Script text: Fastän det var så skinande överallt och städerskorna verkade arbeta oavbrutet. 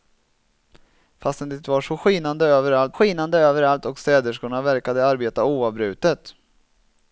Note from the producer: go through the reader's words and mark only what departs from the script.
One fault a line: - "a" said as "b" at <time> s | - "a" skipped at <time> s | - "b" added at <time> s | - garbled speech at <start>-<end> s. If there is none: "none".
- "skinande överallt" added at 2.9 s